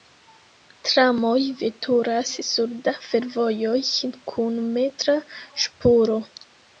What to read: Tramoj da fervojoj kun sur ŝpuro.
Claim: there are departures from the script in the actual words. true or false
true